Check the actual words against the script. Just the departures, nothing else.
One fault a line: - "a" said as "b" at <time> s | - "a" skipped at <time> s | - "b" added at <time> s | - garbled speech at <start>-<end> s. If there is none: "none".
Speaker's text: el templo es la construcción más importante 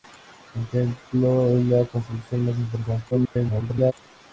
- garbled speech at 3.1-3.9 s